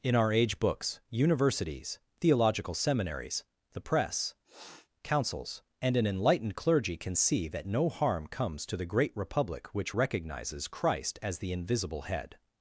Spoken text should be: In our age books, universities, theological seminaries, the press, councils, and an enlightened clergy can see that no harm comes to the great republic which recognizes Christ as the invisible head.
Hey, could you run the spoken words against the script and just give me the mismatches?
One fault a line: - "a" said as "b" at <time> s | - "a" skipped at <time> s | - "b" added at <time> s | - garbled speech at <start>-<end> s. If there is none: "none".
none